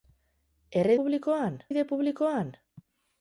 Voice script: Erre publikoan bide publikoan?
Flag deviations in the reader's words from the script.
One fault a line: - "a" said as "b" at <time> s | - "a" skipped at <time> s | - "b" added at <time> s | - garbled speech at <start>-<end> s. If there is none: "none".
none